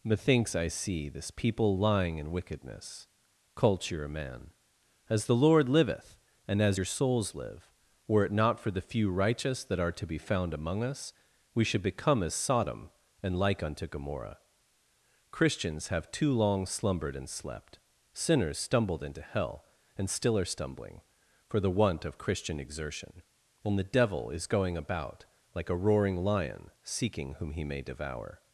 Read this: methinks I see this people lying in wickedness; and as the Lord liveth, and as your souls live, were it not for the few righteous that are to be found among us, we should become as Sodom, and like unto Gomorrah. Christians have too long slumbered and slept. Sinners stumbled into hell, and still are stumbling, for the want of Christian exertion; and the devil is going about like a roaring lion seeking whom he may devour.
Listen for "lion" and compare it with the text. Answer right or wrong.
right